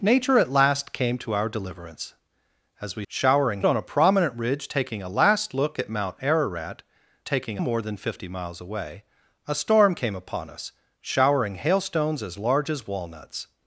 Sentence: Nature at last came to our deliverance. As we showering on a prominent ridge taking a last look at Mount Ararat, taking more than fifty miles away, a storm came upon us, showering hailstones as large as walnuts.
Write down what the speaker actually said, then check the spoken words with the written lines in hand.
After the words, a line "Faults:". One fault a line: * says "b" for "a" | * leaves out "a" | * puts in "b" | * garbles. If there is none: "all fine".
Nature at last came to our deliverance. As we showering on a prominent ridge taking a last look at Mount Ararat, taking more than fifty miles away, a storm came upon us, showering hailstones as large as walnuts.
Faults:
all fine